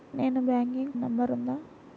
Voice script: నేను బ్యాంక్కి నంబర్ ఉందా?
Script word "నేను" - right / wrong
right